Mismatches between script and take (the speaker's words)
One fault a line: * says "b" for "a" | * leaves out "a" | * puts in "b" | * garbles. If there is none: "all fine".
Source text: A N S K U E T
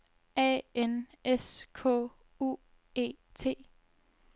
all fine